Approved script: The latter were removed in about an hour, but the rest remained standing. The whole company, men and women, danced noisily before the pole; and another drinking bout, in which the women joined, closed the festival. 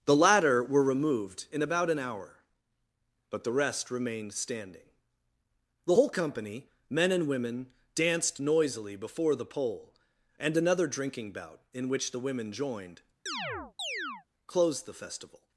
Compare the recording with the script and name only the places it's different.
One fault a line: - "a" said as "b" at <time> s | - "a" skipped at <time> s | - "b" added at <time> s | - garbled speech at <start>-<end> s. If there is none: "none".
none